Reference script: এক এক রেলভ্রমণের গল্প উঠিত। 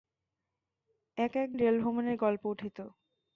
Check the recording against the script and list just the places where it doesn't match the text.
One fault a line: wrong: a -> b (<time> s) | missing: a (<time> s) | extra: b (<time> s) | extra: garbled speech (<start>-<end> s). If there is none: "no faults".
no faults